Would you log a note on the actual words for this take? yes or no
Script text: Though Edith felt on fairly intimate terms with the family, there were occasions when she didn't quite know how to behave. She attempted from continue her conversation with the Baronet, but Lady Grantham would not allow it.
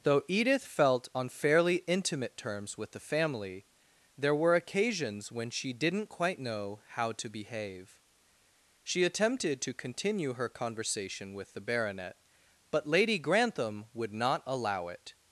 yes